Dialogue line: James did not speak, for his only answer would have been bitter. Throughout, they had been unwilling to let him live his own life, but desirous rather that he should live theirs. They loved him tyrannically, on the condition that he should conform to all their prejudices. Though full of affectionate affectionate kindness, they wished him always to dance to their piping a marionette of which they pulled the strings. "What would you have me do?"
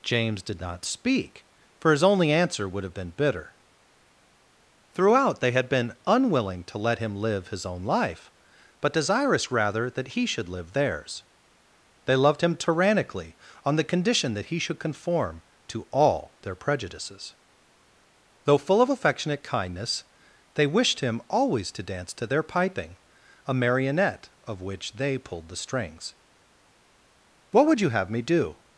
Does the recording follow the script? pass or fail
fail